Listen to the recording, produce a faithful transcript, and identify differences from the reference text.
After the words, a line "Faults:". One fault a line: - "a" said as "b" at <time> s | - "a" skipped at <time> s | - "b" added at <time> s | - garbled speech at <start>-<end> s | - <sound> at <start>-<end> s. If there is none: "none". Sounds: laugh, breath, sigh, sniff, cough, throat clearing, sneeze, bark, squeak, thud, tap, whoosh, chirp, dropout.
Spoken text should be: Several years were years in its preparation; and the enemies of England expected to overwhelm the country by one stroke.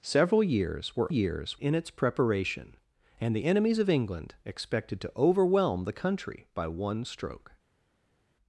Several years were years in its preparation; and the enemies of England expected to overwhelm the country by one stroke.
Faults:
none